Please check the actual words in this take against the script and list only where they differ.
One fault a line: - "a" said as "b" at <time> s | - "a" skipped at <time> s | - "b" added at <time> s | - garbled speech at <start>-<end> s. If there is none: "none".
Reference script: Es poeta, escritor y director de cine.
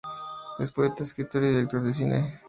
none